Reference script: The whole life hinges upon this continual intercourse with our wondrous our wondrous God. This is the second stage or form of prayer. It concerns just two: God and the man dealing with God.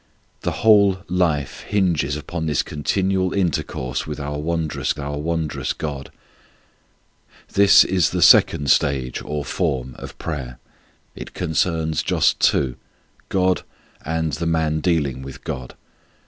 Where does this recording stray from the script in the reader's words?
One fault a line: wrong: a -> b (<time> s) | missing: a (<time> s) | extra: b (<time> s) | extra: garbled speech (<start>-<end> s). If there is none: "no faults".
no faults